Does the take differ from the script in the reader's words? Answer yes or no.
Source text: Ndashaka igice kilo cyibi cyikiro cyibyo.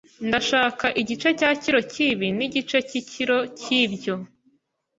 yes